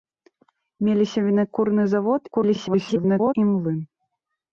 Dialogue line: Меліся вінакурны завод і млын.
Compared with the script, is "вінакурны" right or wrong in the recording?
right